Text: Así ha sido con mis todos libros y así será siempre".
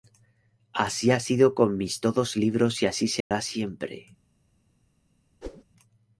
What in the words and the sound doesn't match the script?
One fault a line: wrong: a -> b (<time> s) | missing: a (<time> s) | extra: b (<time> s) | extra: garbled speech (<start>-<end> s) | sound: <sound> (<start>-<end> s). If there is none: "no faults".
sound: dropout (3.2-3.3 s)
sound: whoosh (5.4-5.6 s)